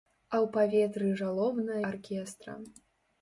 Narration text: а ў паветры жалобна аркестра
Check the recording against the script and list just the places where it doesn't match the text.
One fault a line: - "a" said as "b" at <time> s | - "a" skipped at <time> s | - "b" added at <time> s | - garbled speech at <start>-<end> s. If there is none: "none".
none